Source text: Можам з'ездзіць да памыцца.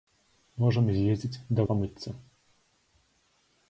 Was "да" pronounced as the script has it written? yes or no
yes